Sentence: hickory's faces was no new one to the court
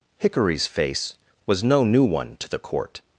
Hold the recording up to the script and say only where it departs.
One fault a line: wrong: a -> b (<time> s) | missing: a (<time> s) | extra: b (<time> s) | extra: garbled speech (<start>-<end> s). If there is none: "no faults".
wrong: faces -> face (0.7 s)